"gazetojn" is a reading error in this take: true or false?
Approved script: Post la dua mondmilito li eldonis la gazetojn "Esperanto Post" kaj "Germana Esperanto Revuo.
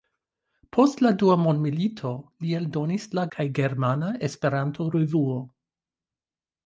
true